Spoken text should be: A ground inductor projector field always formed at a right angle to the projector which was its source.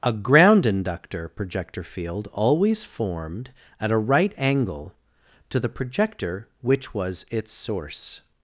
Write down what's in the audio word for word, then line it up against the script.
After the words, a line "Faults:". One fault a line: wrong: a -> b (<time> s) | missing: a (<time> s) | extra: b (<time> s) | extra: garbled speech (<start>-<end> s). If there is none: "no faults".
A ground inductor projector field always formed at a right angle to the projector which was its source.
Faults:
no faults